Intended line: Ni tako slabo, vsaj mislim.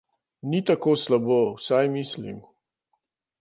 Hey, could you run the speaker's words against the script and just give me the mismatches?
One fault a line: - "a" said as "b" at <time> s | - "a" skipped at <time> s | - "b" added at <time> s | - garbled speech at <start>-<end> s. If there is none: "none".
none